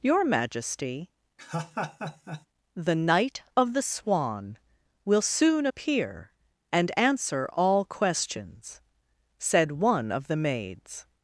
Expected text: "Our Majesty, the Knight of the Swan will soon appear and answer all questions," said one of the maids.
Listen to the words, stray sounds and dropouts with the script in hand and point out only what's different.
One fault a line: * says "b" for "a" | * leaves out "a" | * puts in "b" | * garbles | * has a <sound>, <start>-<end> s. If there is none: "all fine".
* says "Your" for "Our"
* has a laugh, 1.4-2.5 s